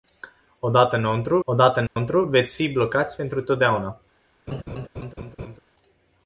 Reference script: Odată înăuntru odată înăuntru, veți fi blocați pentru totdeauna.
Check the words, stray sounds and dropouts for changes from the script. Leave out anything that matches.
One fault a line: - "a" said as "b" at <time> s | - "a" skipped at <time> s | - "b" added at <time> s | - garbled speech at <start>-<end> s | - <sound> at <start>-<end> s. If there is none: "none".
- dropout at 1.9-2.0 s
- laugh at 4.5-5.6 s